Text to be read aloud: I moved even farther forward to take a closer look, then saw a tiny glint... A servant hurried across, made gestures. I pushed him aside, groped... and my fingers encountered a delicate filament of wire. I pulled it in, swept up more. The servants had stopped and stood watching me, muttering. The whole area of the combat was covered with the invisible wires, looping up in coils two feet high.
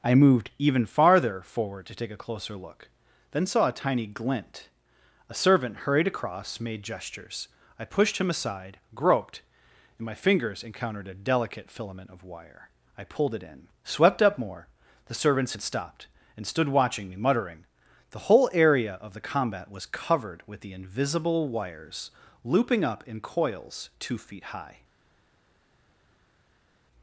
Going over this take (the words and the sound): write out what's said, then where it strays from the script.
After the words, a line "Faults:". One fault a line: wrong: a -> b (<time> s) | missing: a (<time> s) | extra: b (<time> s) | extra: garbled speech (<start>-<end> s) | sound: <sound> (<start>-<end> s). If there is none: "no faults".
I moved even farther forward to take a closer look, then saw a tiny glint... A servant hurried across, made gestures. I pushed him aside, groped... and my fingers encountered a delicate filament of wire. I pulled it in, swept up more. The servants had stopped and stood watching me, muttering. The whole area of the combat was covered with the invisible wires, looping up in coils two feet high.
Faults:
no faults